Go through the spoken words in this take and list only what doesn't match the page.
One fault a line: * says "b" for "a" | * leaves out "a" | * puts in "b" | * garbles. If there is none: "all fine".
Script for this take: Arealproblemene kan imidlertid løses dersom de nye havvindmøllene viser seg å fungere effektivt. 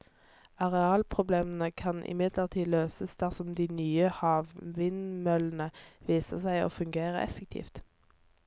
all fine